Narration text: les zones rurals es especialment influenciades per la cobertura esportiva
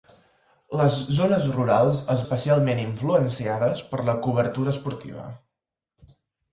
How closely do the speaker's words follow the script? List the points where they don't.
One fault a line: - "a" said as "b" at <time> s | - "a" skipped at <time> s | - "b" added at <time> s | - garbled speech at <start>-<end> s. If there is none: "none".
none